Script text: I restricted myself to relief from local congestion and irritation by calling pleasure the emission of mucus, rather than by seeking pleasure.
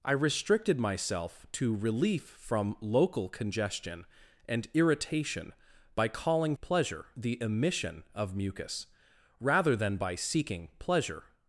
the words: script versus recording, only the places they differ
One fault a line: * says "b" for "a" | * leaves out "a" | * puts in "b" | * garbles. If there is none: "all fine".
all fine